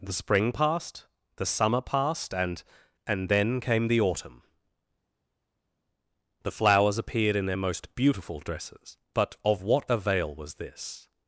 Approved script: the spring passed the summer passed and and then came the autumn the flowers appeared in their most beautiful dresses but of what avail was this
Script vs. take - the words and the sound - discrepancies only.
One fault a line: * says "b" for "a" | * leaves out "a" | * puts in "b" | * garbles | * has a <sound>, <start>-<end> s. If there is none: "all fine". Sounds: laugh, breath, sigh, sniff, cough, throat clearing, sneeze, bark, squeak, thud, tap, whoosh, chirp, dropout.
all fine